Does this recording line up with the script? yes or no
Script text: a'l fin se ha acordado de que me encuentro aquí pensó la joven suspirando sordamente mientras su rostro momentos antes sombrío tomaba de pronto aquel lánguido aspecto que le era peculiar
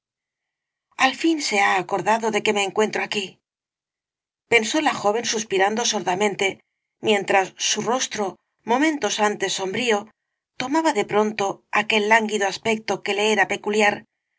yes